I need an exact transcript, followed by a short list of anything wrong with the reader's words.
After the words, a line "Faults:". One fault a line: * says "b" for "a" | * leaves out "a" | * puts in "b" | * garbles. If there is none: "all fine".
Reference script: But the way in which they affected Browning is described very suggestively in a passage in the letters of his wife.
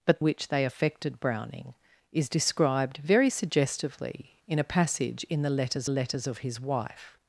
But which they affected Browning is described very suggestively in a passage in the letters letters of his wife.
Faults:
* leaves out "the way in"
* puts in "letters"